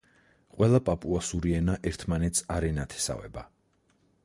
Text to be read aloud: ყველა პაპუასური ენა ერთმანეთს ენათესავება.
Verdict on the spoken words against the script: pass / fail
fail